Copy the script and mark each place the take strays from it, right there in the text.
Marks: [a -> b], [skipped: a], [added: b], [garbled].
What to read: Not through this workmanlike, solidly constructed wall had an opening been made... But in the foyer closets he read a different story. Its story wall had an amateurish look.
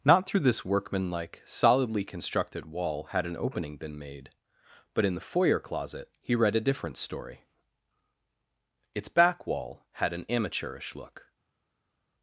Not through this workmanlike, solidly constructed wall had an opening been made... But in the foyer [closets -> closet] he read a different story. Its [story -> back] wall had an amateurish look.